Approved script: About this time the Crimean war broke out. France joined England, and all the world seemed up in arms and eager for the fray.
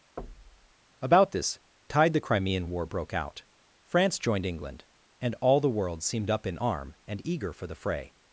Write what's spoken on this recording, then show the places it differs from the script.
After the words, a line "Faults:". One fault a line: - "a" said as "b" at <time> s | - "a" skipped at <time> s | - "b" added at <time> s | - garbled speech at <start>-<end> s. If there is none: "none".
About this tide the Crimean war broke out. France joined England, and all the world seemed up in arm and eager for the fray.
Faults:
- "time" said as "tide" at 1.9 s
- "arms" said as "arm" at 6.6 s